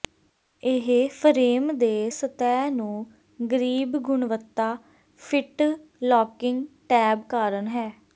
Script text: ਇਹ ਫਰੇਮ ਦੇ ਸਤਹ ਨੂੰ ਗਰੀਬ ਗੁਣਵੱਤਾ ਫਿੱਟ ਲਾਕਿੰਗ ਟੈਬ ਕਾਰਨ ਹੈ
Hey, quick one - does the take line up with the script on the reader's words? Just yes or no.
yes